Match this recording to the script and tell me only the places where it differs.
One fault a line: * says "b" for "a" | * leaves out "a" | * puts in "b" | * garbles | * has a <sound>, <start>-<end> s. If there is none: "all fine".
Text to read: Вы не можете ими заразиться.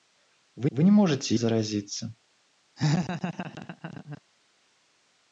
* puts in "вы"
* leaves out "ими"
* has a laugh, 2.8-4.2 s